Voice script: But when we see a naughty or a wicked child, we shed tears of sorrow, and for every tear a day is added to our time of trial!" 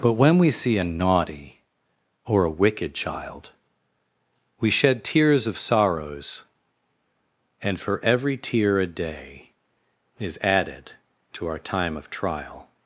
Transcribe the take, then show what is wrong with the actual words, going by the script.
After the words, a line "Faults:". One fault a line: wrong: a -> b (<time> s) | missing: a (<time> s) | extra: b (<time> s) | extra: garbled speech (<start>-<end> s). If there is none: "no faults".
But when we see a naughty or a wicked child, we shed tears of sorrows, and for every tear a day is added to our time of trial!"
Faults:
wrong: sorrow -> sorrows (5.6 s)